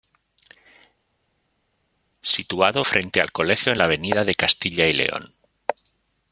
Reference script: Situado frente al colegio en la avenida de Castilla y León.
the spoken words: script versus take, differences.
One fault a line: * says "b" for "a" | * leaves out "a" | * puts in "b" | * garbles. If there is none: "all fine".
all fine